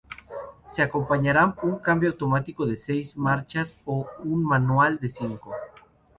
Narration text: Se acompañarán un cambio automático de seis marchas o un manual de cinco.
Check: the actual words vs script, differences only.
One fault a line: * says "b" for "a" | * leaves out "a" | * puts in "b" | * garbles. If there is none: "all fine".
all fine